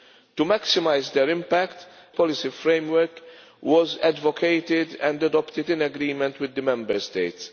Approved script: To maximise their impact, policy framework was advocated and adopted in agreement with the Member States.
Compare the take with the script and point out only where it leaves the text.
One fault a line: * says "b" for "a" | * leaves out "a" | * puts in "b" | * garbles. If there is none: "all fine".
all fine